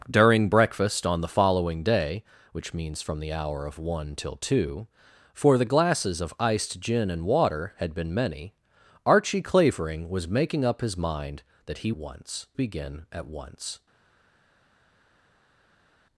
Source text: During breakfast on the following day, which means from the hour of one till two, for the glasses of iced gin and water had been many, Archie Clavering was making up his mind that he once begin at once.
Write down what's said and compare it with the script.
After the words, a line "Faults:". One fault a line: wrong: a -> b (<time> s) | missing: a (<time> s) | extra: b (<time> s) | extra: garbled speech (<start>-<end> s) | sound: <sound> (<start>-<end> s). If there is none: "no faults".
During breakfast on the following day, which means from the hour of one till two, for the glasses of iced gin and water had been many, Archie Clavering was making up his mind that he once begin at once.
Faults:
no faults